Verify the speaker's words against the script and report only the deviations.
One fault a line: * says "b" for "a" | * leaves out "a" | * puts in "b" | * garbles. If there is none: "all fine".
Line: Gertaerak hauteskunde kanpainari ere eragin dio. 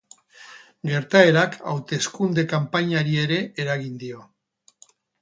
all fine